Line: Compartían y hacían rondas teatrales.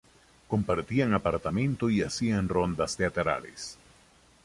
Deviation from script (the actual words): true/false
true